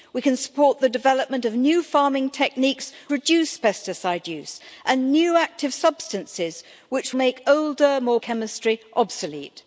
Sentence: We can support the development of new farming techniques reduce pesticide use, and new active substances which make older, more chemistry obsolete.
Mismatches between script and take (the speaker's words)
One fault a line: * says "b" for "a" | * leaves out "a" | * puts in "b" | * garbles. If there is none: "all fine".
all fine